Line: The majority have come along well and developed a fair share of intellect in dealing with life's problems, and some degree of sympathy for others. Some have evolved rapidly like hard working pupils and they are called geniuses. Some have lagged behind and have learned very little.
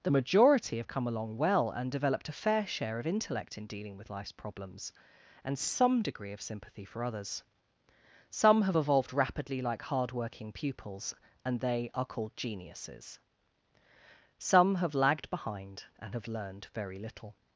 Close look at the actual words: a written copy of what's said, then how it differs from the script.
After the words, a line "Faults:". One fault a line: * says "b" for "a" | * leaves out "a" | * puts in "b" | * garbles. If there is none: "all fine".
The majority have come along well and developed a fair share of intellect in dealing with life's problems, and some degree of sympathy for others. Some have evolved rapidly like hard working pupils and they are called geniuses. Some have lagged behind and have learned very little.
Faults:
all fine